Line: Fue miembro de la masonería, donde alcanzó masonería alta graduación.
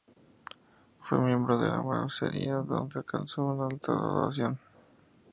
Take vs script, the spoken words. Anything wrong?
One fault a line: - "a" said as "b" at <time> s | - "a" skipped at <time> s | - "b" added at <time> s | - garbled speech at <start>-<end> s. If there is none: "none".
- "masonería" said as "una" at 3.4 s